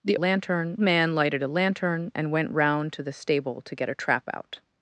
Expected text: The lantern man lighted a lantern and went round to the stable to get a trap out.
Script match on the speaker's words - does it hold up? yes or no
yes